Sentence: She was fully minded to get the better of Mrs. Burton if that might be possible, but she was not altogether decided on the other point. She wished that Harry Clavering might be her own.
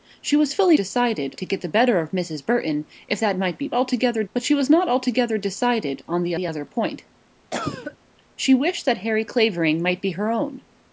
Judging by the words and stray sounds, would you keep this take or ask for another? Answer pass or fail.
fail